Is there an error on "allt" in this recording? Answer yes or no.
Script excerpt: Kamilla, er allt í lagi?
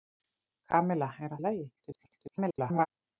yes